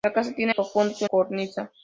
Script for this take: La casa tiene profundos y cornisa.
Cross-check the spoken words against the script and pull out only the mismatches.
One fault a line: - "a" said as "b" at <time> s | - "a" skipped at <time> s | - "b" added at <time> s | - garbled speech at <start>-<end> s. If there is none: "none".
none